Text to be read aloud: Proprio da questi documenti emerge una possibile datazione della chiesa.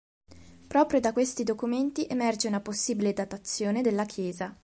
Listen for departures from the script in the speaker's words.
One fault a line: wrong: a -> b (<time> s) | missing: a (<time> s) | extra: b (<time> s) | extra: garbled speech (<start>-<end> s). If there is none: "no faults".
no faults